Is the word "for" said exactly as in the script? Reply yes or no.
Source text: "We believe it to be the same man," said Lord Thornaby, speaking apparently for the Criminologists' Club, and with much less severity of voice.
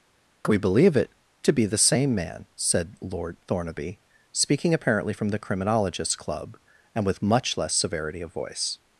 no